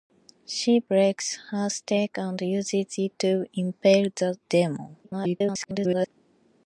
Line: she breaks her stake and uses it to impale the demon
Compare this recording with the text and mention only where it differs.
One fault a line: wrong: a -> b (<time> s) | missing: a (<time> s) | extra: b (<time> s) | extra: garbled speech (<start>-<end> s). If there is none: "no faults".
extra: garbled speech (5.0-6.1 s)